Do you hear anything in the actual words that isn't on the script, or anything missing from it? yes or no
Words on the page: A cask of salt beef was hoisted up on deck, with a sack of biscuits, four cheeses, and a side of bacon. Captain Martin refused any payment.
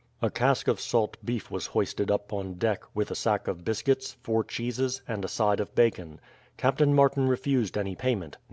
no